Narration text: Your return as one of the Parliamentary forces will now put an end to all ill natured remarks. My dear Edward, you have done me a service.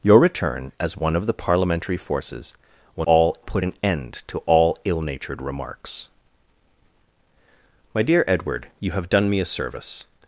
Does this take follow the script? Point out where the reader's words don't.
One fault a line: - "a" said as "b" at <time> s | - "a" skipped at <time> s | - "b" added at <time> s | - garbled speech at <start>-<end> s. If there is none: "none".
- "now" said as "all" at 3.1 s